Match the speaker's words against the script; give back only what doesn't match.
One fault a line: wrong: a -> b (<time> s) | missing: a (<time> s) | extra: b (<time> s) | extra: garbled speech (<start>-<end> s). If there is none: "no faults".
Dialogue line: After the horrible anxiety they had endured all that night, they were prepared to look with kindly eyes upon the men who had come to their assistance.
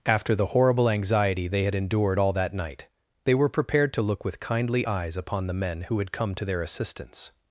no faults